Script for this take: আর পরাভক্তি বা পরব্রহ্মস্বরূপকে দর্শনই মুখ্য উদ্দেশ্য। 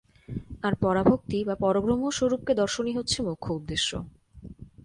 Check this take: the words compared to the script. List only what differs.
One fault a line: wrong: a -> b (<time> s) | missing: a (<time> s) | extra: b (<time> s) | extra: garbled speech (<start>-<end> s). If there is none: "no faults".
extra: হচ্ছে (3.0 s)